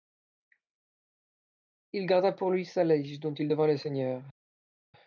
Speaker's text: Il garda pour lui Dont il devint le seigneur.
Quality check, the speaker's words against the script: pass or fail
fail